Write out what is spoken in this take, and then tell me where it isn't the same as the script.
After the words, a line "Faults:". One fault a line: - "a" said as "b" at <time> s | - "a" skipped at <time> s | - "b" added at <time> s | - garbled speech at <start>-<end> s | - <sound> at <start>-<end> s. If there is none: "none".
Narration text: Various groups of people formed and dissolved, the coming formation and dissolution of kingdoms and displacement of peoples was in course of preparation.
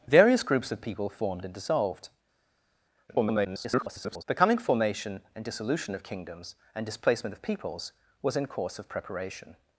Various groups of people formed and dissolved, [garbled] the coming formation and dissolution of kingdoms and displacement of peoples was in course of preparation.
Faults:
- garbled speech at 3.1-4.2 s